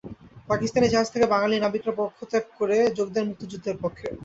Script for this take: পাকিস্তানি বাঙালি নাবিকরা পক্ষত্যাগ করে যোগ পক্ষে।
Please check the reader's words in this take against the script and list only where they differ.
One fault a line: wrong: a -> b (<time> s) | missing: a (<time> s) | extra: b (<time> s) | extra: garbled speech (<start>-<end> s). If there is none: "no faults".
extra: জাহাজ থেকে (0.9 s)
extra: দেন মুক্তিযুদ্ধের (3.1 s)